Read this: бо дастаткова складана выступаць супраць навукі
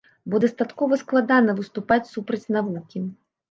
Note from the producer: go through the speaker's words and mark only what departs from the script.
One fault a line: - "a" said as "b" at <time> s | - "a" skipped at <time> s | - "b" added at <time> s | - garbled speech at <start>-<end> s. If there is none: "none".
none